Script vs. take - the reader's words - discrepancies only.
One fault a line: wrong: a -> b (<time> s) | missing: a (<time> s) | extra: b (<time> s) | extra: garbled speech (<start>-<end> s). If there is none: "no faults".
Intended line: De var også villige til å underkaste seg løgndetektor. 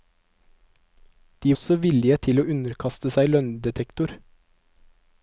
missing: var (1.5 s)